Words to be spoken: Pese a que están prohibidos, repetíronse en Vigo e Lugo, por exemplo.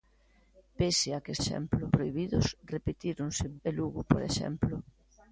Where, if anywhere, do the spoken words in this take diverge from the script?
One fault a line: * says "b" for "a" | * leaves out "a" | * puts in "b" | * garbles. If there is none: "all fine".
* says "exemplo" for "están"
* leaves out "Vigo"